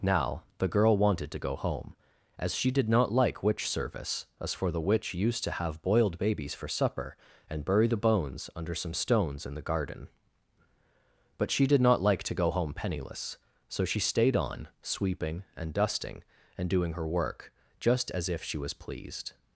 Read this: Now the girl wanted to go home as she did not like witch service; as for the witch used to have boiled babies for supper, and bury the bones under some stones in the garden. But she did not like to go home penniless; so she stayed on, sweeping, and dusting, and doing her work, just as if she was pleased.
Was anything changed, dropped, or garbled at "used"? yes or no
no